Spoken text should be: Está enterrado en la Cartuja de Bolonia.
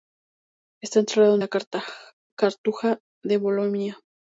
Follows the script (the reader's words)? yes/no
yes